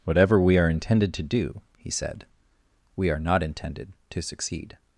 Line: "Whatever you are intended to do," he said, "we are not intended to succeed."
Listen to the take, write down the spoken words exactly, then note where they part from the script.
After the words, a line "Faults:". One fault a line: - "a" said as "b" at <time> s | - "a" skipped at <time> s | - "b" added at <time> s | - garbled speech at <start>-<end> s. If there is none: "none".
"Whatever we are intended to do," he said, "we are not intended to succeed."
Faults:
- "you" said as "we" at 0.4 s